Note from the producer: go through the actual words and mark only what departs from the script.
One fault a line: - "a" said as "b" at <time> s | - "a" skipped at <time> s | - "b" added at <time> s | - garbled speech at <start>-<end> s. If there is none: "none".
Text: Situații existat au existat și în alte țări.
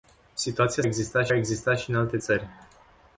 none